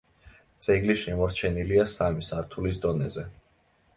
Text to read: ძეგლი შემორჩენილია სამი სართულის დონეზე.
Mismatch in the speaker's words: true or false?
false